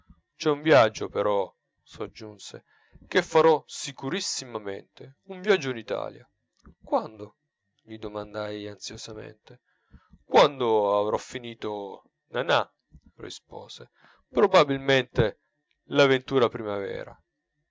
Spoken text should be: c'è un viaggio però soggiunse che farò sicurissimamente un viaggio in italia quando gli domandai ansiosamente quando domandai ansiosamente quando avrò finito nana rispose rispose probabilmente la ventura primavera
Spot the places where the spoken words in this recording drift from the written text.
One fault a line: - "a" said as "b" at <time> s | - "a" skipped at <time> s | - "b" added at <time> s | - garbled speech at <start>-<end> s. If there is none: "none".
- "domandai ansiosamente quando" skipped at 11.0 s
- "rispose" skipped at 13.9 s